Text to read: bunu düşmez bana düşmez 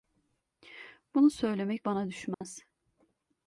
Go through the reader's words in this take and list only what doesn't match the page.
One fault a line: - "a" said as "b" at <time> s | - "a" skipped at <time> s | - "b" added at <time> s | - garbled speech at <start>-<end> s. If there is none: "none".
- "düşmez" said as "söylemek" at 1.3 s